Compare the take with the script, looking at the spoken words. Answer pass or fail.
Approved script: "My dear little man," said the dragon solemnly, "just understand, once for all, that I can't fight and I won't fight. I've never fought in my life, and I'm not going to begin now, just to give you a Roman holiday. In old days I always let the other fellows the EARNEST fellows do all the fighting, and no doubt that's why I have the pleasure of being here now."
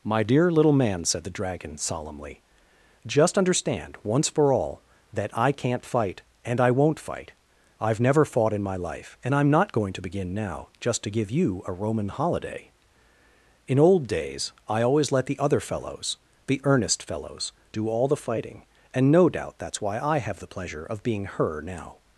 fail